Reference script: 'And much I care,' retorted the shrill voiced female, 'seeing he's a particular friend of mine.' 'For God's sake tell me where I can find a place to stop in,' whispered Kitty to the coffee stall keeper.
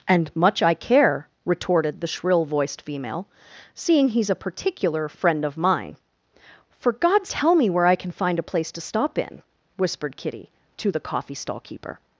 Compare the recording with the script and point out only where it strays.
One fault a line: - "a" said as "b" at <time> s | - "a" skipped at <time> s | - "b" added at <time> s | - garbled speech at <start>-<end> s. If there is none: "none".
- "sake" skipped at 7.3 s